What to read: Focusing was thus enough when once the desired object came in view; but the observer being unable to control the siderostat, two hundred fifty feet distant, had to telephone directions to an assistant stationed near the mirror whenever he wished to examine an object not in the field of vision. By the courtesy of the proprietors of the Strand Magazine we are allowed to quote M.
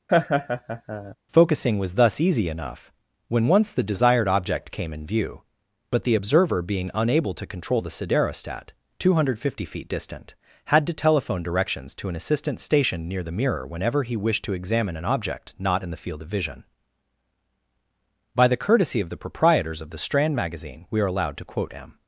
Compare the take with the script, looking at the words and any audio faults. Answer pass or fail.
fail